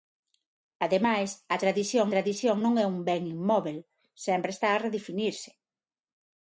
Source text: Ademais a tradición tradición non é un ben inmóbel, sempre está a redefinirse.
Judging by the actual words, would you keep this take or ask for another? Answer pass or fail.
pass